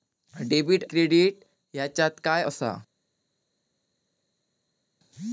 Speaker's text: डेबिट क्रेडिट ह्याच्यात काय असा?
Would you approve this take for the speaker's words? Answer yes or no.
yes